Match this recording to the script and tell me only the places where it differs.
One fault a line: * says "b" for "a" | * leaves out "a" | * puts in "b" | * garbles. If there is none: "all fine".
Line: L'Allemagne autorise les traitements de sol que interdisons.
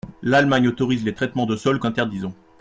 all fine